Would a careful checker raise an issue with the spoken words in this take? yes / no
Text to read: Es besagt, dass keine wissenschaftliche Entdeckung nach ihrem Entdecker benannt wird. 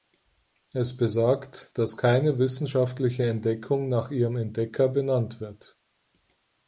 no